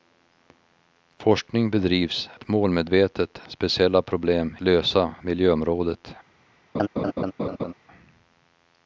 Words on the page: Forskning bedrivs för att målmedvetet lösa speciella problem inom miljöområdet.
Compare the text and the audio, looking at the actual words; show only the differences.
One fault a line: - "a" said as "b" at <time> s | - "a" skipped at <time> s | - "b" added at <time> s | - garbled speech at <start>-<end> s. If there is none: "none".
- "för" skipped at 2.3 s
- "lösa" skipped at 3.4 s
- "inom" said as "lösa" at 4.6 s